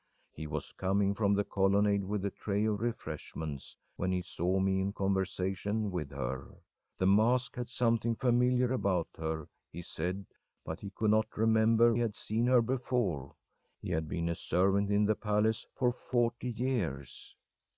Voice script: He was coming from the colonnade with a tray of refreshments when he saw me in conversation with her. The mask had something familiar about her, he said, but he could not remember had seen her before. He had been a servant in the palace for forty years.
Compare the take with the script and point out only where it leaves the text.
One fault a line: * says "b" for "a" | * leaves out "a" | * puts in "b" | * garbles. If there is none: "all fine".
all fine